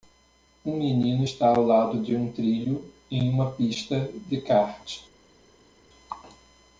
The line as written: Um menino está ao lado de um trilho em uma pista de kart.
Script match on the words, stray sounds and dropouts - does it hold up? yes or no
yes